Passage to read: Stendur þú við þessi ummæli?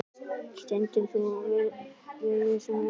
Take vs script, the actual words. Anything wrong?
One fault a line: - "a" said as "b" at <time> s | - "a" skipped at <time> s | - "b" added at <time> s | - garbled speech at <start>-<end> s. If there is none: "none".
none